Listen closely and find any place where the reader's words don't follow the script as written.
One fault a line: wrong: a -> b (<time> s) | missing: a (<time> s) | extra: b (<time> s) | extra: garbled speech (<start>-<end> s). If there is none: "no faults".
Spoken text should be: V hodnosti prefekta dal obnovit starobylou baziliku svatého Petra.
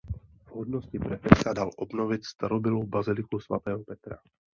no faults